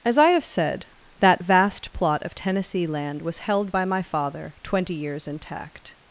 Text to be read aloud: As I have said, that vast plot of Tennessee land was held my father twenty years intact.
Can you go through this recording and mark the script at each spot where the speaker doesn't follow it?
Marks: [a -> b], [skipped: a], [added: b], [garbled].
As I have said, that vast plot of Tennessee land was held [added: by] my father twenty years intact.